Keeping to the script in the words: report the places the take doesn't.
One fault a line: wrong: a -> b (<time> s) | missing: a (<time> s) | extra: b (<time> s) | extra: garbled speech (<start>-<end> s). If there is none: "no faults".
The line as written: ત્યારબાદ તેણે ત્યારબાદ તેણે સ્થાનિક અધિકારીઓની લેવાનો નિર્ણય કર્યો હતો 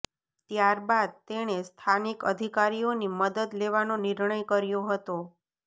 missing: ત્યારબાદ તેણે (1.6 s)
extra: મદદ (3.2 s)